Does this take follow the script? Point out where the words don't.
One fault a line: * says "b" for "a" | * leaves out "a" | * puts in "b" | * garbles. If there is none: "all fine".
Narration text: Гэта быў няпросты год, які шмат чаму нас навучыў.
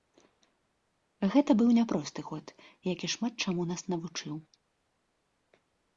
all fine